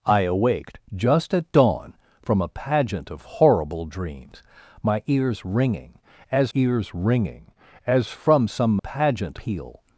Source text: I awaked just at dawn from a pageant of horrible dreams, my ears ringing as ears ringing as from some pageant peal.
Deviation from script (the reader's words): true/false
false